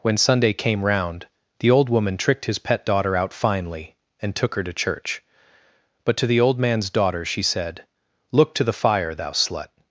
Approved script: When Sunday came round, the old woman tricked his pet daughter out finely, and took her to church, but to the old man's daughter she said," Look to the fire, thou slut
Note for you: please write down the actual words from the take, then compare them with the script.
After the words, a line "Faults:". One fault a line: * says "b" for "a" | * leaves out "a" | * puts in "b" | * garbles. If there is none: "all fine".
When Sunday came round, the old woman tricked his pet daughter out finely, and took her to church, but to the old man's daughter she said," Look to the fire, thou slut
Faults:
all fine